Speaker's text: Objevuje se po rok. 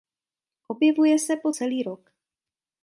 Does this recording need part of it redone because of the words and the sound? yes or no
yes